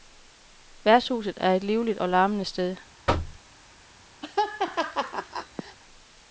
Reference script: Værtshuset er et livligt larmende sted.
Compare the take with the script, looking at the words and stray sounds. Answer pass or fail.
fail